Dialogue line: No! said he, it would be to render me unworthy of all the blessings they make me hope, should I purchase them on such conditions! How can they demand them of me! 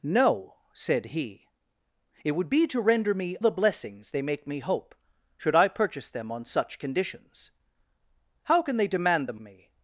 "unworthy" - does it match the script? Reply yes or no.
no